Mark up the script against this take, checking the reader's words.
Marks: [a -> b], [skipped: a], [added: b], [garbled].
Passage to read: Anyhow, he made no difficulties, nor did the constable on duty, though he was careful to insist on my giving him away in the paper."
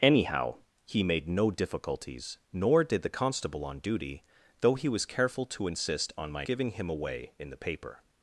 Anyhow, he made no difficulties, nor did the constable on duty, though he was careful to insist on my giving him away in the paper."